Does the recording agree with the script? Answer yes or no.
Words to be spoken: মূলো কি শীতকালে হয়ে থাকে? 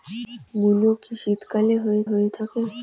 no